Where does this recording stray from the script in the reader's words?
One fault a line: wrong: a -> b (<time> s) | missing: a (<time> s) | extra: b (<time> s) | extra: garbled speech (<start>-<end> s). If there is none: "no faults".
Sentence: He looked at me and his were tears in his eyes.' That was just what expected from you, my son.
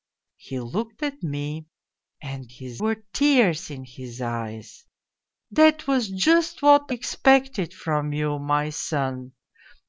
no faults